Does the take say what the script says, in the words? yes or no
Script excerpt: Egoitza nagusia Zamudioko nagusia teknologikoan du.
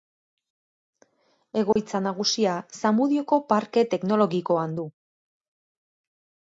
no